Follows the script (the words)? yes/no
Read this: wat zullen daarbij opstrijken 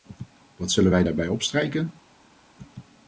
no